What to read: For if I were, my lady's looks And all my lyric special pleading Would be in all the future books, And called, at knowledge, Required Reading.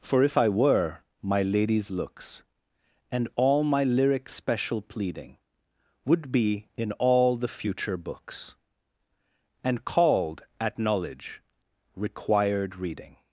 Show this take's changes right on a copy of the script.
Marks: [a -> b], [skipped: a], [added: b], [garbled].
For if I were, my lady's looks And all my lyric special pleading Would be in all the future books, And called, at knowledge, Required Reading.